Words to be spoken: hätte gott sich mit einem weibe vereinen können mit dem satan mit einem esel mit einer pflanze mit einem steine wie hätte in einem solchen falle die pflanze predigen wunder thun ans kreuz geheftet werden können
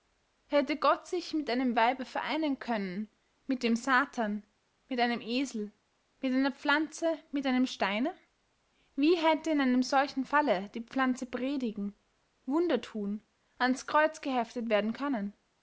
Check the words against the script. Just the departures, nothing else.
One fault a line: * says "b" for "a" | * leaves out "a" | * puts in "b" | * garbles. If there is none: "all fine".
all fine